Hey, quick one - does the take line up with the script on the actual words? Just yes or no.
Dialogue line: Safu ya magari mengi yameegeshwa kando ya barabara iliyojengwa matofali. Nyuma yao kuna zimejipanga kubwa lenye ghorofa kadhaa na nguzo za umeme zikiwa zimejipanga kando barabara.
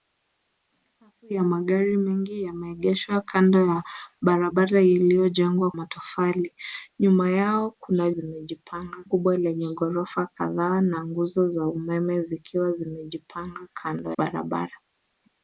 yes